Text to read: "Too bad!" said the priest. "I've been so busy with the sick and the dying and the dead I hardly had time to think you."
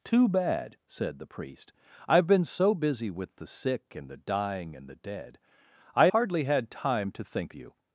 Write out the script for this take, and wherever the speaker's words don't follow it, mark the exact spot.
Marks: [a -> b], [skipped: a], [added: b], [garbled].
"Too bad!" said the priest. "I've been so busy with the sick and the dying and the dead I hardly had time to think you."